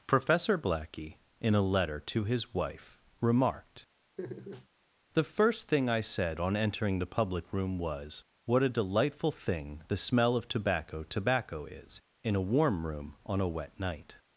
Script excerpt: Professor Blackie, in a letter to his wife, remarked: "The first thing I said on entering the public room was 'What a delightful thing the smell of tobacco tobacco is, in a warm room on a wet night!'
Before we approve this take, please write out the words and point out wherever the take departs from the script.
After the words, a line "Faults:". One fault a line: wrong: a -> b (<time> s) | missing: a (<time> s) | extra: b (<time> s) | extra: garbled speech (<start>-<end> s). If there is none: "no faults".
Professor Blackie, in a letter to his wife, remarked: "The first thing I said on entering the public room was 'What a delightful thing the smell of tobacco tobacco is, in a warm room on a wet night!'
Faults:
no faults